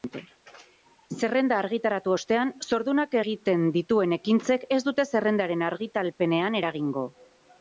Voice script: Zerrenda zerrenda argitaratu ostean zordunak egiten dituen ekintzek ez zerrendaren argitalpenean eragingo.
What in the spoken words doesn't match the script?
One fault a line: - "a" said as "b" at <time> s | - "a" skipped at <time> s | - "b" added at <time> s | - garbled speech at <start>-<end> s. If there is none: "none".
- "zerrenda" skipped at 1.6 s
- "dute" added at 4.9 s